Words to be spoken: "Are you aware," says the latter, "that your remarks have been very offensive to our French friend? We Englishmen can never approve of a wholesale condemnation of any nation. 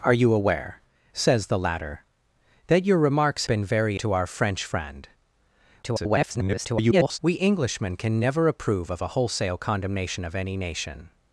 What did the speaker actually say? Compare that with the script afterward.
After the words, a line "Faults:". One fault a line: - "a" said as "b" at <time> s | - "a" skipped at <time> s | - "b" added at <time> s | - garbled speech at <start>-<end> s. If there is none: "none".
"Are you aware," says the latter, "that your remarks been very to our French friend? [garbled] We Englishmen can never approve of a wholesale condemnation of any nation.
Faults:
- "have" skipped at 3.5 s
- "offensive" skipped at 4.0 s
- garbled speech at 5.8-7.2 s